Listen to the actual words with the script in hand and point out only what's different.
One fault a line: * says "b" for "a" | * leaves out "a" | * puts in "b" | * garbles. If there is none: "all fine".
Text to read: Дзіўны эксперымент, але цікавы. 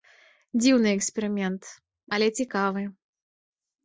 all fine